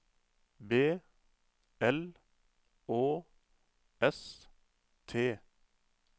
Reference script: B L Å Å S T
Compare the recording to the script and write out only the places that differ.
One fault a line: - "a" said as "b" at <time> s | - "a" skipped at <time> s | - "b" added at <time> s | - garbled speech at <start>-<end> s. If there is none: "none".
- "Å" skipped at 3.2 s